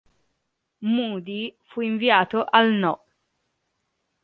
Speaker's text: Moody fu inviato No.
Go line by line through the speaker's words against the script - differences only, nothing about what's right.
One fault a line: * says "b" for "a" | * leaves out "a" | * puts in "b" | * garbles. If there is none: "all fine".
* puts in "al"